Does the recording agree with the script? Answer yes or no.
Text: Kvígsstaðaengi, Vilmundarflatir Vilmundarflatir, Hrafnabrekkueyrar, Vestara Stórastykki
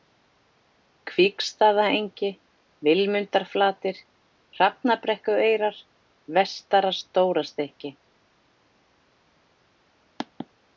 no